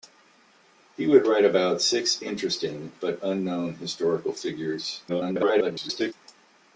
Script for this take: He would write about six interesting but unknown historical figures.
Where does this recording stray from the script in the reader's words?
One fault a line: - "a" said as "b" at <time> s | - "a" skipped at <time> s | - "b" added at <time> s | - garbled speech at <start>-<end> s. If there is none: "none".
- garbled speech at 5.1-6.1 s